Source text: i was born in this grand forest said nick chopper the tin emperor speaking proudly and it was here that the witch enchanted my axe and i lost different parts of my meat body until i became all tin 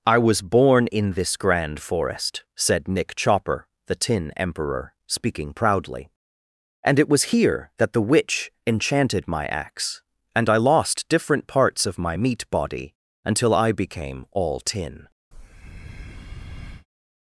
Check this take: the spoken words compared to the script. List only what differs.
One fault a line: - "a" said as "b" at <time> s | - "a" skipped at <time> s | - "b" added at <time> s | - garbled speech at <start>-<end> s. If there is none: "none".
none